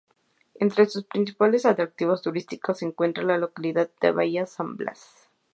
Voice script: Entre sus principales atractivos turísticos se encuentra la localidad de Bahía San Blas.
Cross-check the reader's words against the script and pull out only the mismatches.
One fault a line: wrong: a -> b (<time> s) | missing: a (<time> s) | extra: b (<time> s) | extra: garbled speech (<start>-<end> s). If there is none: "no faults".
no faults